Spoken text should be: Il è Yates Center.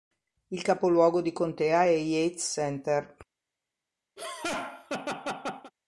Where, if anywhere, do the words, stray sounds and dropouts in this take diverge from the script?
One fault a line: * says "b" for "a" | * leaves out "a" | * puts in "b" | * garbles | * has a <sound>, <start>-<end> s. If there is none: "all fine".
* puts in "capoluogo di contea"
* has a laugh, 4.2-5.7 s